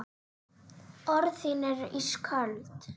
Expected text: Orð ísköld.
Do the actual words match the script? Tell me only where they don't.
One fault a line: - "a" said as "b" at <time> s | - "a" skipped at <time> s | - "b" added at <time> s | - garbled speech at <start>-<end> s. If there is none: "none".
- "þín eru" added at 1.4 s